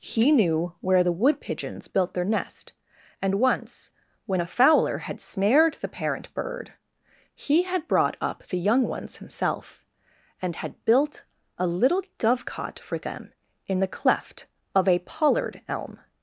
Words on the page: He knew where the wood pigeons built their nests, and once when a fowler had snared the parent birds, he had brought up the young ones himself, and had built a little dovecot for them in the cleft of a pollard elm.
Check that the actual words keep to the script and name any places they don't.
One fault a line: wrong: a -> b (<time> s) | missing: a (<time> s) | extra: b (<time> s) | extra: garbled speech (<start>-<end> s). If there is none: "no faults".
wrong: nests -> nest (2.2 s)
wrong: birds -> bird (6.3 s)